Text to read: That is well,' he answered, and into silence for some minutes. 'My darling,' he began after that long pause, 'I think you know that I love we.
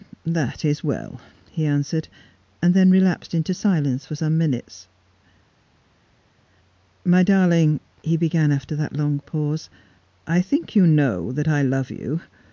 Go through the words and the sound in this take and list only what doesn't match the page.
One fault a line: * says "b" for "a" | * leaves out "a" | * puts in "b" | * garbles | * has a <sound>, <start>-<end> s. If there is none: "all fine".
* puts in "then relapsed"
* says "you" for "we"